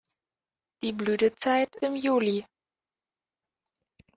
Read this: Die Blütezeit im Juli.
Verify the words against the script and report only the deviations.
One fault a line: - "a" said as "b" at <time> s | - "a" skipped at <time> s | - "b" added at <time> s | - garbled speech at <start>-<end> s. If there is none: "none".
none